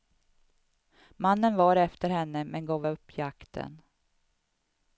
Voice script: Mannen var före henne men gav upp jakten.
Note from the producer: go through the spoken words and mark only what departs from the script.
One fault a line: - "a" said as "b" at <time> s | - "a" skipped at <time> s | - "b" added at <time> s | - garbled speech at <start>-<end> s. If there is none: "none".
- "före" said as "efter" at 1.8 s